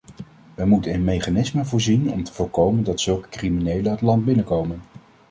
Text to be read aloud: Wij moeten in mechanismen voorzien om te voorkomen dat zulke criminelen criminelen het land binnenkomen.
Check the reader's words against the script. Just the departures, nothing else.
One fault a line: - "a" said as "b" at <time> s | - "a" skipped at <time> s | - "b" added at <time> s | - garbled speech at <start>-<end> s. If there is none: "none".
- "criminelen" skipped at 3.9 s